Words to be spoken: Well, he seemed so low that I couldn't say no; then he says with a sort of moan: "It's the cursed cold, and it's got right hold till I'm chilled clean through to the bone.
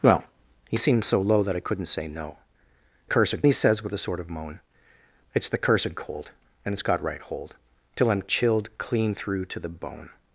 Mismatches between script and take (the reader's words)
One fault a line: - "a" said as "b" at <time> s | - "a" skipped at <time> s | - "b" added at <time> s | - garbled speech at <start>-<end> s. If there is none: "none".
- "then" said as "cursed" at 3.0 s